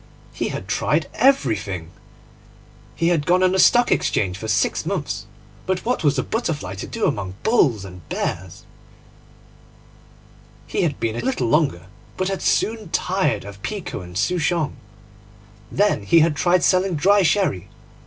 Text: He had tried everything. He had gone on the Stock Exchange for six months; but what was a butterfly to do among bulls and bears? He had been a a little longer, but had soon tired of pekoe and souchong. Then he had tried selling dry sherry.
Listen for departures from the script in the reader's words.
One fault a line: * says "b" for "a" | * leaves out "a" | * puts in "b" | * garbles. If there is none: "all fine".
all fine